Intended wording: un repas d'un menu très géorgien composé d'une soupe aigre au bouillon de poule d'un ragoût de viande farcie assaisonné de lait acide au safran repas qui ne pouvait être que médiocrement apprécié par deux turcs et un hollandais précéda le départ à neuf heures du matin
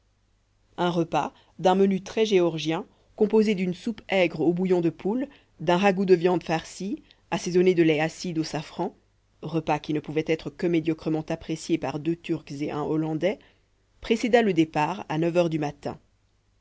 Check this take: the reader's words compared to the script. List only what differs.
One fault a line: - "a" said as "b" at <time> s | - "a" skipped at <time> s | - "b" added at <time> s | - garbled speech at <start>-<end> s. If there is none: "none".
none